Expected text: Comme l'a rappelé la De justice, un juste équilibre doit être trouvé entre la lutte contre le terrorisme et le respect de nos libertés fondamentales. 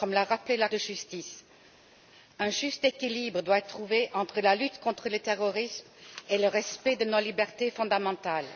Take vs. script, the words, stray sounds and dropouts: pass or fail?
pass